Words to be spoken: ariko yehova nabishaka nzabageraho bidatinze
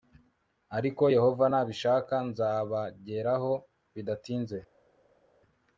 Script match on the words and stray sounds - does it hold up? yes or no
yes